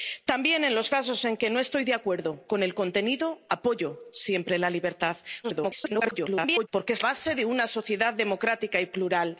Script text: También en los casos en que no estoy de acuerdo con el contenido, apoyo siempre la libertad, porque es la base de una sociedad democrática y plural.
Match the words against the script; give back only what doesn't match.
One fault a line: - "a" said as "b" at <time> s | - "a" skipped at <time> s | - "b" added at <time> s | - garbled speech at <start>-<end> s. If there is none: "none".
- garbled speech at 5.4-6.7 s
- "la" skipped at 7.0 s